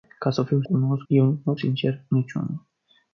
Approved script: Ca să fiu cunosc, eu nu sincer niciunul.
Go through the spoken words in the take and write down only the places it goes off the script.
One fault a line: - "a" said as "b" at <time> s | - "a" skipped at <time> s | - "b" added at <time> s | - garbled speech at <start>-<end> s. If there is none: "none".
none